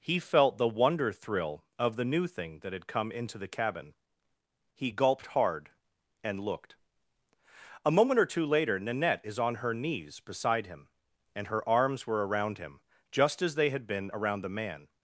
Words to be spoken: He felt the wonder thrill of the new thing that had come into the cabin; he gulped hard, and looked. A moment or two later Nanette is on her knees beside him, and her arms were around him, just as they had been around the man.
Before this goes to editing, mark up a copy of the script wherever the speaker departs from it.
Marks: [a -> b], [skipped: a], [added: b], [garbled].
He felt the wonder thrill of the new thing that had come into the cabin; he gulped hard, and looked. A moment or two later Nanette is on her knees beside him, and her arms were around him, just as they had been around the man.